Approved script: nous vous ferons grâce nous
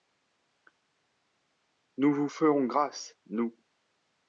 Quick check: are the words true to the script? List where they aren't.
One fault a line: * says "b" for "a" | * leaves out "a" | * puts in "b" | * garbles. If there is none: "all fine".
all fine